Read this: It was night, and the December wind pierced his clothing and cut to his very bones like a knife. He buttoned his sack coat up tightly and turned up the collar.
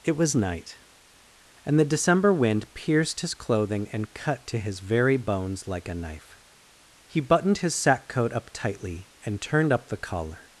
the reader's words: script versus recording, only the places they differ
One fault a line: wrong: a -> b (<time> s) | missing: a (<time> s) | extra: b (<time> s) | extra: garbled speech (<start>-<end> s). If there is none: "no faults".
no faults